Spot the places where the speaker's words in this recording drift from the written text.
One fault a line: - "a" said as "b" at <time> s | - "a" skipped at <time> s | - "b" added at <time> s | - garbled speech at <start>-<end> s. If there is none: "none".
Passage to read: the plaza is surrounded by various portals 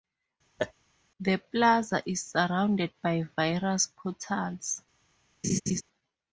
none